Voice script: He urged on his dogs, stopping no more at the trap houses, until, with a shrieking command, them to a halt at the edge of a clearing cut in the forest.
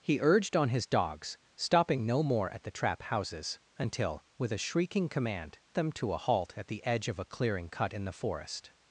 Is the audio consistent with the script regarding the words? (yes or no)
yes